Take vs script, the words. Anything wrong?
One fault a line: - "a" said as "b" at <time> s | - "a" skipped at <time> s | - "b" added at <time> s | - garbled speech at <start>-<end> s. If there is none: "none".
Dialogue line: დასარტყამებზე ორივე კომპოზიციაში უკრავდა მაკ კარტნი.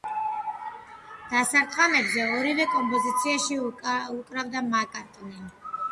none